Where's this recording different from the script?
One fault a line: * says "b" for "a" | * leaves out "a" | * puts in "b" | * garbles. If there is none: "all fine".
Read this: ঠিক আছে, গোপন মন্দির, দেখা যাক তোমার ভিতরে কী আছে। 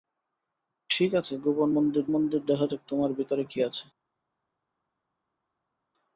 * puts in "মন্দির"